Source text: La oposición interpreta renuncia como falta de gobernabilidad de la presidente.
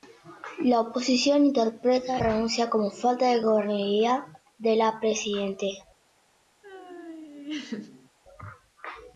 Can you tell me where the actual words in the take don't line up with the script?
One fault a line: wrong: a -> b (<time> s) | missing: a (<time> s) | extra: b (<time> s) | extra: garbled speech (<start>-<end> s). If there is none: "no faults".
no faults